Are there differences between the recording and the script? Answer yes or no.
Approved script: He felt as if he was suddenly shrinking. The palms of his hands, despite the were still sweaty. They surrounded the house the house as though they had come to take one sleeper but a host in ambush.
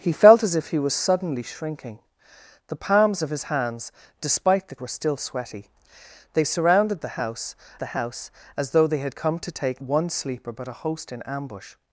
no